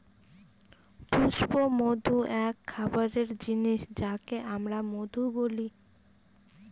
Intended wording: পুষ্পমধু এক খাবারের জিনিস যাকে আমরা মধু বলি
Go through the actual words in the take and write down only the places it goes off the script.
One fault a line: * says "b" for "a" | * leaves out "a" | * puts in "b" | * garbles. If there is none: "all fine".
all fine